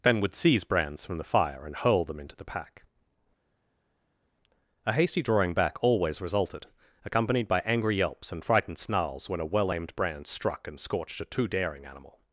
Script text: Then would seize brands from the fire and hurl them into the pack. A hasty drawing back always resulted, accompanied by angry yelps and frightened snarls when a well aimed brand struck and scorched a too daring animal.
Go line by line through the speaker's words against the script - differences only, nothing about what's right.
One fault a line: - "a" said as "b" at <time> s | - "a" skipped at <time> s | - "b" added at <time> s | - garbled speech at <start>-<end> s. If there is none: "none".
none